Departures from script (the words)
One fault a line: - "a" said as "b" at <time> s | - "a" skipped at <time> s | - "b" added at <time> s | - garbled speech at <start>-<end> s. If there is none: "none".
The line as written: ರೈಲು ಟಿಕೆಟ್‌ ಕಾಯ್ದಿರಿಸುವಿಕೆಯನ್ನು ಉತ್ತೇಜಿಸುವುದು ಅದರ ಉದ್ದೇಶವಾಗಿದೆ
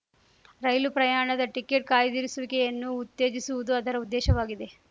- "ಪ್ರಯಾಣದ" added at 0.9 s